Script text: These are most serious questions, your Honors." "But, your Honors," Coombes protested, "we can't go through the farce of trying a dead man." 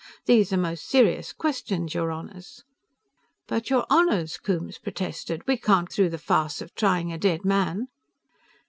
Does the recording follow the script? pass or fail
fail